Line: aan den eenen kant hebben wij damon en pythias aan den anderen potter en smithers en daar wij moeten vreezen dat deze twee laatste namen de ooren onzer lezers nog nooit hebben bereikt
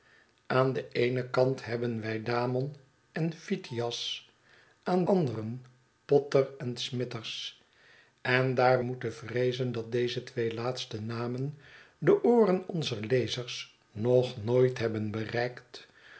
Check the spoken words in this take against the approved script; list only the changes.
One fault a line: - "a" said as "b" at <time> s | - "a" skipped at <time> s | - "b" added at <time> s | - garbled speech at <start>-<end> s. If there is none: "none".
- "den" skipped at 5.0 s
- "wij" skipped at 8.8 s